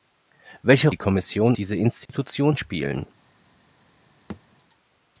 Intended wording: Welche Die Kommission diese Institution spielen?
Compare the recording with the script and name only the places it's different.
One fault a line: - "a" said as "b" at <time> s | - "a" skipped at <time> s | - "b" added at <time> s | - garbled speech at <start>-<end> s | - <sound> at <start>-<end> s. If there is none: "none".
- dropout at 2.1-2.1 s
- thud at 4.3-4.4 s